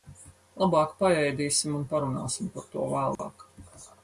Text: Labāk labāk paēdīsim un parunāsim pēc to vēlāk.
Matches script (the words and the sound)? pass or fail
fail